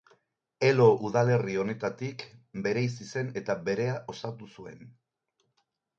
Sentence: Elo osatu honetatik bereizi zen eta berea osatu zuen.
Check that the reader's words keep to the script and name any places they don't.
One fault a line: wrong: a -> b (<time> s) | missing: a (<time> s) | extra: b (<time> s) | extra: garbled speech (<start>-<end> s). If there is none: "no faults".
wrong: osatu -> udalerri (1.1 s)